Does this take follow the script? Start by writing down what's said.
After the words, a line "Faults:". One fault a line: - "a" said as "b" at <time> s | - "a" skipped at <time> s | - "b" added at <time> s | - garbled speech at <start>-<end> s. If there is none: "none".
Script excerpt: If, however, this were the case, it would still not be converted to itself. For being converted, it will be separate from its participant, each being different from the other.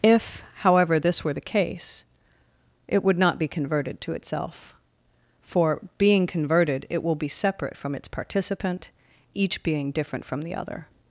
If, however, this were the case, it would not be converted to itself. For being converted, it will be separate from its participant, each being different from the other.
Faults:
- "still" skipped at 3.2 s